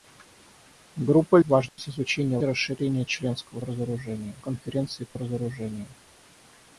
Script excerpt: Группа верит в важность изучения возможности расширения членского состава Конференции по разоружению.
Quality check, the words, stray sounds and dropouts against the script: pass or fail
fail